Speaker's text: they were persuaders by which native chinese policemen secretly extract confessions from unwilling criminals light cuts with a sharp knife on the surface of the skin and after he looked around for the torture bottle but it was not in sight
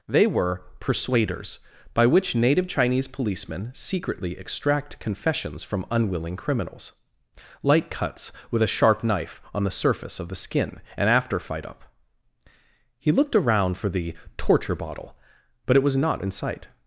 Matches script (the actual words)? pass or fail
fail